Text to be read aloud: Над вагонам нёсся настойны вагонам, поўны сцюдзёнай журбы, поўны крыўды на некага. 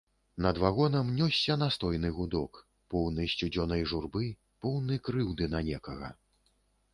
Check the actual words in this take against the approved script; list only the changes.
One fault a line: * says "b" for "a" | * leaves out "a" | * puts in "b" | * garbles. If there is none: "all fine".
* says "гудок" for "вагонам"